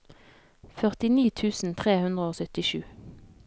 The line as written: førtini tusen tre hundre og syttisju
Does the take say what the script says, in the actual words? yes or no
yes